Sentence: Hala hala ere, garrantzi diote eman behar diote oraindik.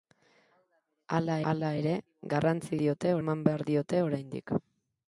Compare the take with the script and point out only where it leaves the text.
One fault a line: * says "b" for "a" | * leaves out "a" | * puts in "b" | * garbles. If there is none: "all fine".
all fine